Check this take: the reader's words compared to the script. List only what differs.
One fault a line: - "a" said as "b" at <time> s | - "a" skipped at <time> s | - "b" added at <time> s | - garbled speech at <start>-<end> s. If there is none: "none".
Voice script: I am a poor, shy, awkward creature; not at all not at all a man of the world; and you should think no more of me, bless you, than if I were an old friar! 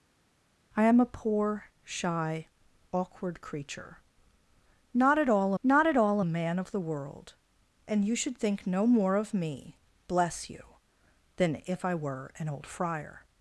none